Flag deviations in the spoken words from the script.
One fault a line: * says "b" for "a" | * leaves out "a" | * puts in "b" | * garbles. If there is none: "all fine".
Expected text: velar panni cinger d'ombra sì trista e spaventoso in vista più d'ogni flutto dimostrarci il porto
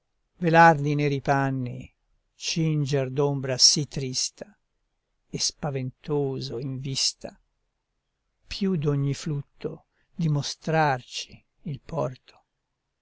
* puts in "di neri"